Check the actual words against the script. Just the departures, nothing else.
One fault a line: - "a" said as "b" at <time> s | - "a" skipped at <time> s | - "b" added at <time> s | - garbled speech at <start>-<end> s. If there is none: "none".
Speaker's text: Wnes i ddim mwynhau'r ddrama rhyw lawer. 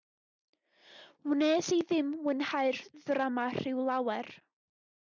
none